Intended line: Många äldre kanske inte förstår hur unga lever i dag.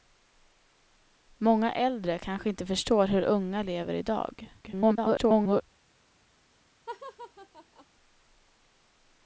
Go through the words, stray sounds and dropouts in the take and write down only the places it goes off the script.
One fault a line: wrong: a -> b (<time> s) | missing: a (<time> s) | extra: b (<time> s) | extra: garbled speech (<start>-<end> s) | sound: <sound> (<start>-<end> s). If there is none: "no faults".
extra: garbled speech (4.6-5.6 s)
sound: laugh (6.9-7.9 s)